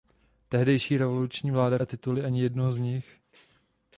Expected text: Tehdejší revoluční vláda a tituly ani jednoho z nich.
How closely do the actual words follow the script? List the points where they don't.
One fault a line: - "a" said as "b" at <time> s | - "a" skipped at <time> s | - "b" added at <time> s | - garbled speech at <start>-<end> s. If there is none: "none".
none